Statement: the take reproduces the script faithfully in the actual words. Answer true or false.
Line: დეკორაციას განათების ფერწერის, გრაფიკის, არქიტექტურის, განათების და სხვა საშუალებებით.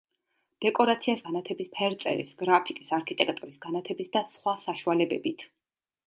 true